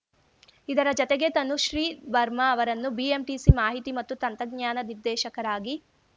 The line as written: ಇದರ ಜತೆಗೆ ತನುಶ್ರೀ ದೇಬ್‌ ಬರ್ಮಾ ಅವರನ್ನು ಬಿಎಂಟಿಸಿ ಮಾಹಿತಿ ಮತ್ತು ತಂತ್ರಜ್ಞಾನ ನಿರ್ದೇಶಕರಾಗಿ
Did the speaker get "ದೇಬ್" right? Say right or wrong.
wrong